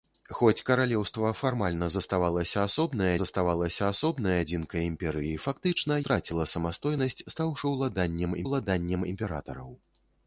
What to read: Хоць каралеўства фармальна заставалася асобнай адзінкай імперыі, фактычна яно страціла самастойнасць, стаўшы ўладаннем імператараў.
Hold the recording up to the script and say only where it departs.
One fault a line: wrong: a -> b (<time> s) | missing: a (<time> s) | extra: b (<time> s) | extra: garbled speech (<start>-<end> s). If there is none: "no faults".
extra: заставалася асобнай (3.2 s)
missing: яно (6.0 s)
extra: ўладаннем (8.5 s)